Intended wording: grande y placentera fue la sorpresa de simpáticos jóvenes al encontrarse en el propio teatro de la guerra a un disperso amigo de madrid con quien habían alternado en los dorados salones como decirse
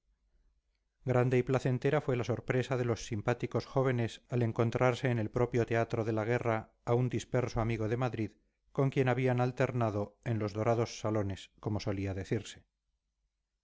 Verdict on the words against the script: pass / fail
fail